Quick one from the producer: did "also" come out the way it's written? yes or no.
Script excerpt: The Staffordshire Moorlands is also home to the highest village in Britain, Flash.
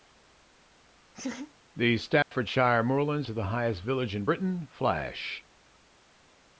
no